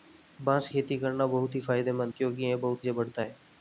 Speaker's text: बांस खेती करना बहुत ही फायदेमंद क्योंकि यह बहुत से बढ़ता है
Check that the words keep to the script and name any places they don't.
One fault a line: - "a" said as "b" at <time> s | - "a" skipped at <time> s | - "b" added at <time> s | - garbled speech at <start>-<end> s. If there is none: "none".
none